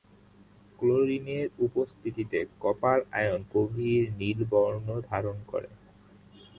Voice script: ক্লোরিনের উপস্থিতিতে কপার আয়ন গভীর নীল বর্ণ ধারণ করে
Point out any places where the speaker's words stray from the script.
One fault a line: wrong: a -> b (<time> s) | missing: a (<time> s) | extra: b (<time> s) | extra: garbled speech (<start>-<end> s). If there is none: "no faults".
no faults